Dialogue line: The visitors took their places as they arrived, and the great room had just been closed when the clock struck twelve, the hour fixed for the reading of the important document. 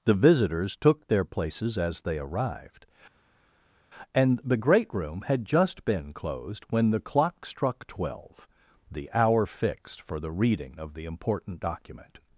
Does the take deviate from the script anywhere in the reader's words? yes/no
no